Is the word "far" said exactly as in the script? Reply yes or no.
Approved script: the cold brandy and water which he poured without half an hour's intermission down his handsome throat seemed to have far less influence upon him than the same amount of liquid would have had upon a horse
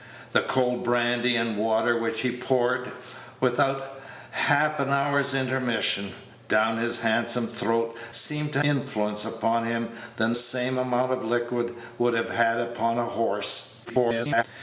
no